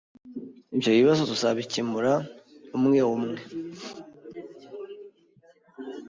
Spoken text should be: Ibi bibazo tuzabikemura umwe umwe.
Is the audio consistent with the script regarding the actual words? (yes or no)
no